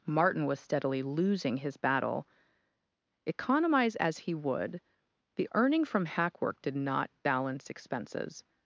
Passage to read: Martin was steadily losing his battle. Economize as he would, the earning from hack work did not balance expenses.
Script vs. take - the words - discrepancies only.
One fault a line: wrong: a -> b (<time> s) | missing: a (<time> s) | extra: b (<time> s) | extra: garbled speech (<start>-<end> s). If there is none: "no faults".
no faults